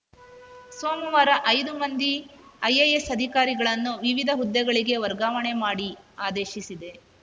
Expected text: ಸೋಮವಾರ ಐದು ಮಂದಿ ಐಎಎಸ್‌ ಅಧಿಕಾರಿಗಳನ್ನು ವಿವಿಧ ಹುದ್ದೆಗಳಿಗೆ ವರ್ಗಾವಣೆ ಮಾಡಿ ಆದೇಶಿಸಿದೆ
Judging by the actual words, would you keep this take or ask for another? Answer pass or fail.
pass